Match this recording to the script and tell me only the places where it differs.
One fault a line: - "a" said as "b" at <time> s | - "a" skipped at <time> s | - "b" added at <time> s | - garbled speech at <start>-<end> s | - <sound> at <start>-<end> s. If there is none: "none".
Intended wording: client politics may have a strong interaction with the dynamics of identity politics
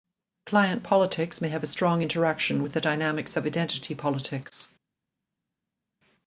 none